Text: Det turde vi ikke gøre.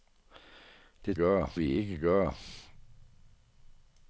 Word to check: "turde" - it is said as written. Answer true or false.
false